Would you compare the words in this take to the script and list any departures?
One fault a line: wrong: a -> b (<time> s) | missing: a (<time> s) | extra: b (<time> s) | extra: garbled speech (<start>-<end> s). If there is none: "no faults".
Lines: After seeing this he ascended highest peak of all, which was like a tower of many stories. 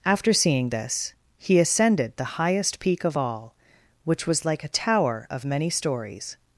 extra: the (2.2 s)